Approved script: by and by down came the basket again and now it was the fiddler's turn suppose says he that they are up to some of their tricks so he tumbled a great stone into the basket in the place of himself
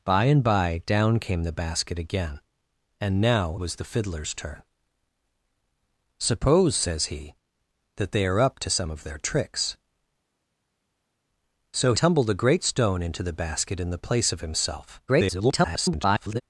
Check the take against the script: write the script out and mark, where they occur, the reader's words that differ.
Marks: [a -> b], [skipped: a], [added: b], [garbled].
by and by down came the basket again and now [skipped: it] was the fiddler's turn suppose says he that they are up to some of their tricks so [skipped: he] tumbled a great stone into the basket in the place of himself [garbled]